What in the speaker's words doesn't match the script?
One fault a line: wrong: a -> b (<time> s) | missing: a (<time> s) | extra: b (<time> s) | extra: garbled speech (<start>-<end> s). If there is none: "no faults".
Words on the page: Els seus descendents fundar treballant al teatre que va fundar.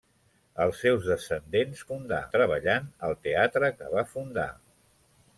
no faults